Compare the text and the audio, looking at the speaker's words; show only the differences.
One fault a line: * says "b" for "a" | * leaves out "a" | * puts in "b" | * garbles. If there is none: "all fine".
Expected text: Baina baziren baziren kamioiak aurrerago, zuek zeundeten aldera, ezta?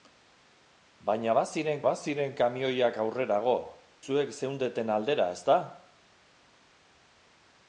all fine